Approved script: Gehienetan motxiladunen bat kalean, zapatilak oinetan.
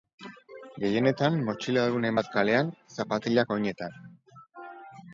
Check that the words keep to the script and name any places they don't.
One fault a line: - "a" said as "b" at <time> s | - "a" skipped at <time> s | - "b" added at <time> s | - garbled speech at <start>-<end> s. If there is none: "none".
none